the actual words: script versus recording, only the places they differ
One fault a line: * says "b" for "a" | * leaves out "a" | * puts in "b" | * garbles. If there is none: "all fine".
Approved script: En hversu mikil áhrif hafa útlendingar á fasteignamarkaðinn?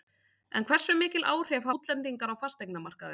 * leaves out "hafa"